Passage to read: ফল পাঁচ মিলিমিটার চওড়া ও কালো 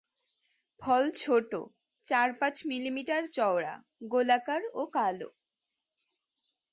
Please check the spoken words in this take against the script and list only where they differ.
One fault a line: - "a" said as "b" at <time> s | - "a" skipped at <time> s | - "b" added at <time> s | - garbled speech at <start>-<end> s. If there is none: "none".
- "ছোট চার" added at 1.2 s
- "গোলাকার" added at 4.1 s